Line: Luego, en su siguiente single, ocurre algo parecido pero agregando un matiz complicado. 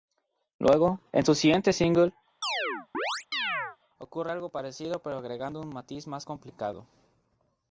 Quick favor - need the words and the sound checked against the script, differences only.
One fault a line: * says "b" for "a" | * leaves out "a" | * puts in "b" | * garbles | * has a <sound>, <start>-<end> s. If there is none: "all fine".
* has a chirp, 2.4-3.8 s
* puts in "más"